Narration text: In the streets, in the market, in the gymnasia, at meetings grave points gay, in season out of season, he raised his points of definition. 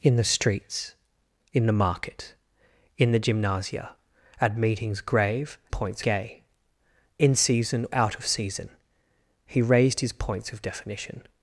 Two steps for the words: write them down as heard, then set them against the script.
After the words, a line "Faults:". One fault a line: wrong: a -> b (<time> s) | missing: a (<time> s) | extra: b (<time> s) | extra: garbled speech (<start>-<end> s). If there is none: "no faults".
In the streets, in the market, in the gymnasia, at meetings grave points gay, in season out of season, he raised his points of definition.
Faults:
no faults